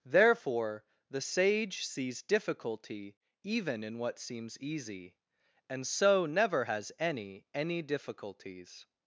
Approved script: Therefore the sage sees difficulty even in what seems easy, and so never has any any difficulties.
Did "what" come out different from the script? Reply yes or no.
no